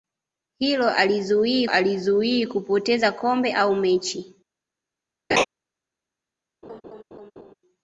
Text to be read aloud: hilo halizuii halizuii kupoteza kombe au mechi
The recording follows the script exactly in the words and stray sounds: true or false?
false